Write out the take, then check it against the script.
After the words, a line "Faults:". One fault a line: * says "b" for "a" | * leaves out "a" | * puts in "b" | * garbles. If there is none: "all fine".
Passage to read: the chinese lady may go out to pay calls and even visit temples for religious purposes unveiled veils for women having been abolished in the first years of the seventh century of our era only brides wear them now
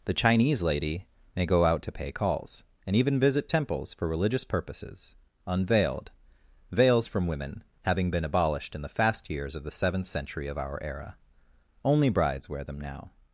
the chinese lady may go out to pay calls and even visit temples for religious purposes unveiled veils from women having been abolished in the fast years of the seventh century of our era only brides wear them now
Faults:
* says "from" for "for"
* says "fast" for "first"